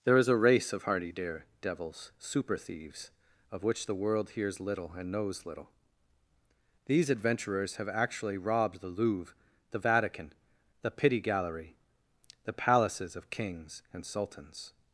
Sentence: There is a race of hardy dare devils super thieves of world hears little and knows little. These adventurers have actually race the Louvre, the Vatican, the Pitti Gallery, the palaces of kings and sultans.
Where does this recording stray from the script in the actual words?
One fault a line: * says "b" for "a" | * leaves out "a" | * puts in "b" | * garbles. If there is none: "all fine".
* puts in "which the"
* says "robbed" for "race"